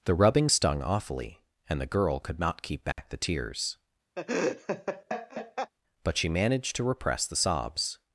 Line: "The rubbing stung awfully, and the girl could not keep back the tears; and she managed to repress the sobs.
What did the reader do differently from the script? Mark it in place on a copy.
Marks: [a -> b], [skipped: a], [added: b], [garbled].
"The rubbing stung awfully, and the girl could not keep back the tears; [and -> but] she managed to repress the sobs.